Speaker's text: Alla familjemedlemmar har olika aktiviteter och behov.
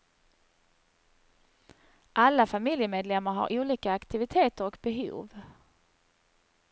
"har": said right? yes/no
yes